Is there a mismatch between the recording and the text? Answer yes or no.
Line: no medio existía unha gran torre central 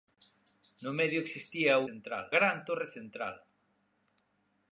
yes